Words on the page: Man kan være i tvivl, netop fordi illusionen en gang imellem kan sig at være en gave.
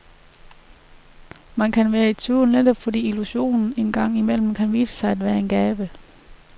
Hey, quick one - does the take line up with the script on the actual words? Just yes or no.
no